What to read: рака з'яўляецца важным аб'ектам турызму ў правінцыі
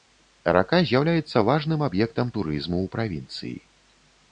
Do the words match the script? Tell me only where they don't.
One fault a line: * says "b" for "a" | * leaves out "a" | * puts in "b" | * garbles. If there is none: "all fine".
all fine